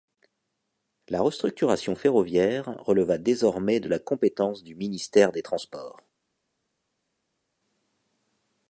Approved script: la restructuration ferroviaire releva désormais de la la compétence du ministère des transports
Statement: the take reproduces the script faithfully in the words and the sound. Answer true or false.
false